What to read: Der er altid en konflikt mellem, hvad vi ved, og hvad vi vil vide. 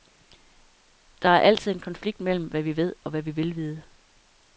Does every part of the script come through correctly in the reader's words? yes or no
yes